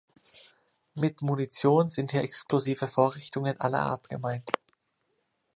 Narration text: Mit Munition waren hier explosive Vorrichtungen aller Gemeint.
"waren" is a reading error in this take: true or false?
true